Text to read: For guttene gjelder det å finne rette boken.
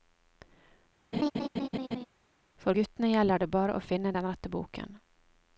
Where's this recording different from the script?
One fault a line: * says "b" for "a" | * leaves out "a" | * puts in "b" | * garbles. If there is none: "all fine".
* puts in "bare"
* puts in "den"